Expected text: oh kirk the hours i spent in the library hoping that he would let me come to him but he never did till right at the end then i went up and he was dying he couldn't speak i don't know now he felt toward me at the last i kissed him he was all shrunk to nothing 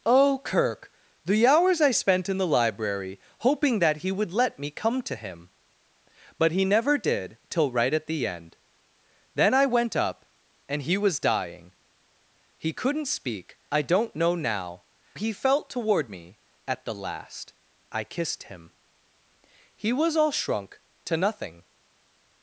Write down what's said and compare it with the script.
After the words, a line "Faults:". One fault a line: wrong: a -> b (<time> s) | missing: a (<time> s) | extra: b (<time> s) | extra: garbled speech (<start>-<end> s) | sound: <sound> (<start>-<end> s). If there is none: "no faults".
oh kirk the hours i spent in the library hoping that he would let me come to him but he never did till right at the end then i went up and he was dying he couldn't speak i don't know now he felt toward me at the last i kissed him he was all shrunk to nothing
Faults:
no faults